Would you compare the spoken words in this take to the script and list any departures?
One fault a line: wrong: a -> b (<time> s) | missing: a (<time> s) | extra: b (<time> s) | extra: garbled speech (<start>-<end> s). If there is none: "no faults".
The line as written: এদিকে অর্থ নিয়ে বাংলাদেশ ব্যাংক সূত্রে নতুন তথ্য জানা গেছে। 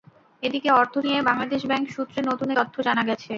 no faults